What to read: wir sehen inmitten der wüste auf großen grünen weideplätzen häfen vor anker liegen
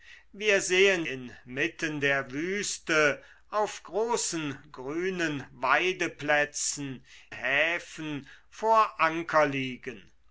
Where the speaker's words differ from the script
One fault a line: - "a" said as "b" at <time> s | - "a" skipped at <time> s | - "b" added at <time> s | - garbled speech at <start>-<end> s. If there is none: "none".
none